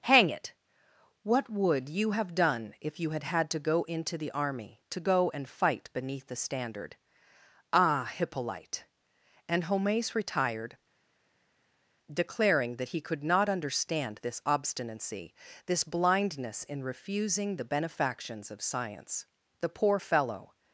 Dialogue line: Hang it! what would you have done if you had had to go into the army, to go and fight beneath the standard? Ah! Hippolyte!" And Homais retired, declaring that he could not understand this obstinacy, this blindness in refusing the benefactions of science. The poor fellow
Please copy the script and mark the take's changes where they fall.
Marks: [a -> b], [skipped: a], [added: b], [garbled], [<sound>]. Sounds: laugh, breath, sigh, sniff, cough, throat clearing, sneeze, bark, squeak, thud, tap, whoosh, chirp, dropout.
Hang it! what would you have done if you had had to go into the army, to go and fight beneath the standard? Ah! Hippolyte!" And Homais retired, declaring that he could not understand this obstinacy, this blindness in refusing the benefactions of science. The poor fellow